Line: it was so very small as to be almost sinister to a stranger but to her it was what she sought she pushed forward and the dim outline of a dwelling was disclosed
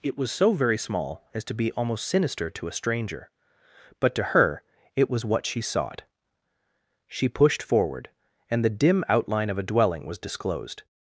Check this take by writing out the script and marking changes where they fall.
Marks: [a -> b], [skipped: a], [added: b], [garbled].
it was so very small as to be almost sinister to a stranger but to her it was what she sought she pushed forward and the dim outline of a dwelling was disclosed